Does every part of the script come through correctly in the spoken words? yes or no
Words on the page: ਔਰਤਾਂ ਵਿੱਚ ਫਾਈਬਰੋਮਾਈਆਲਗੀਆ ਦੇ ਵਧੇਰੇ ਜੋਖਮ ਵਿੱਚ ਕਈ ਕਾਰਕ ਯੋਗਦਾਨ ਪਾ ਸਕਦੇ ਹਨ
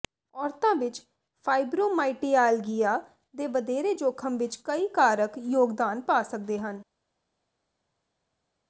yes